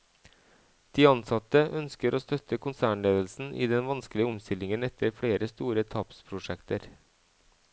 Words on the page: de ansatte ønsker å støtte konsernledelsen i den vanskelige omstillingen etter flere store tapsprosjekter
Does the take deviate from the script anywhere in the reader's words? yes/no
no